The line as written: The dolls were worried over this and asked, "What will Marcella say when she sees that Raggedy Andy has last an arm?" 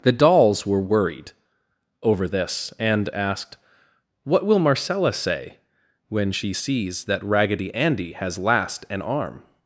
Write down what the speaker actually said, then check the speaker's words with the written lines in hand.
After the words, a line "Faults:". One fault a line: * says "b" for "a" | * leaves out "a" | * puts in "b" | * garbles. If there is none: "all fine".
The dolls were worried over this and asked, "What will Marcella say when she sees that Raggedy Andy has last an arm?"
Faults:
all fine